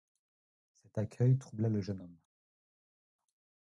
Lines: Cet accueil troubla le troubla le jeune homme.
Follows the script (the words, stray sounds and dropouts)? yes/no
no